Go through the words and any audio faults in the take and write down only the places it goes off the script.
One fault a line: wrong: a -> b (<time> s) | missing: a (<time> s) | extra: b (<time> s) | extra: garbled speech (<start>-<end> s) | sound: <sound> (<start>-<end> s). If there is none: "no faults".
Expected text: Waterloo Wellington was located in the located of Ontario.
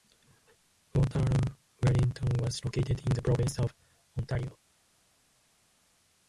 wrong: located -> province (3.2 s)